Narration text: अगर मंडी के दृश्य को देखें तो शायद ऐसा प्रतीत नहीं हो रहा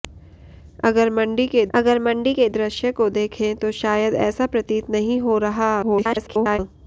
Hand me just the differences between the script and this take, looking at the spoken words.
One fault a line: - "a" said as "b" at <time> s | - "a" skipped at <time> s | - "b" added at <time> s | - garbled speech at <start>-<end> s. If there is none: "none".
- "अगर मंडी के" added at 1.7 s
- garbled speech at 5.8-6.6 s